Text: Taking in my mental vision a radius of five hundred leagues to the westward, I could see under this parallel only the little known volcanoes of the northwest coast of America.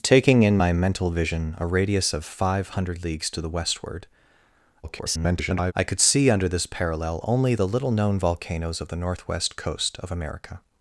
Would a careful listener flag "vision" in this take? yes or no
no